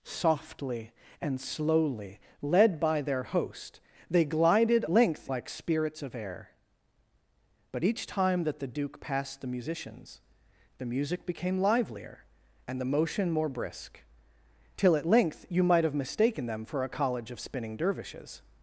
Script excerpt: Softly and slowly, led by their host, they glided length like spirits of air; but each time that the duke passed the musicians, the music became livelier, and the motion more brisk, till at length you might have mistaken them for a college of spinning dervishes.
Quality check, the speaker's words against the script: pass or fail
pass